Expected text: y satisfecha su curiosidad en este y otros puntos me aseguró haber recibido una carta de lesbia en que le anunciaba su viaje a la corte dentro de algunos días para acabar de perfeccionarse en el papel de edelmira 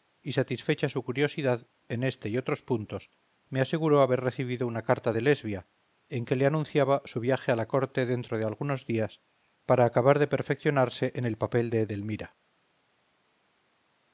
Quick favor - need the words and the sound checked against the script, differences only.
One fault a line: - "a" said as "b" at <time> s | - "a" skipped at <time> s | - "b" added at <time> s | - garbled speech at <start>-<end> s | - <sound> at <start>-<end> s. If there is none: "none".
none